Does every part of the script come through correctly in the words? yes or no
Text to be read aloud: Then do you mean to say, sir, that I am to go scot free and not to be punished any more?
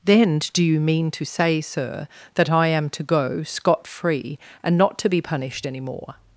yes